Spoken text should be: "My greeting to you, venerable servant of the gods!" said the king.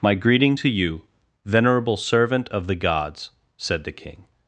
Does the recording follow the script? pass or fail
pass